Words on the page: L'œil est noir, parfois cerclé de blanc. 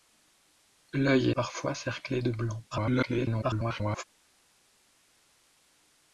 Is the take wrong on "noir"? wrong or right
wrong